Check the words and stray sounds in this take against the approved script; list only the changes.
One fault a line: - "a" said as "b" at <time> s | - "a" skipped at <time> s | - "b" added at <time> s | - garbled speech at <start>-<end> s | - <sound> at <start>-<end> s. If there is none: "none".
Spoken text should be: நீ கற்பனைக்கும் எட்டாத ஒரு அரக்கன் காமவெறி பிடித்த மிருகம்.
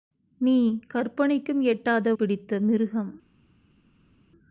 - "ஒரு அரக்கன் காமவெறி" skipped at 2.1 s